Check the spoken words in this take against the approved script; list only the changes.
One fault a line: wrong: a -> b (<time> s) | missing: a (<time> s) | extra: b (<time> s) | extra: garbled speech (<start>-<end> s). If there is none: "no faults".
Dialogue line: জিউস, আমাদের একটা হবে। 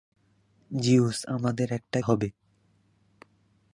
no faults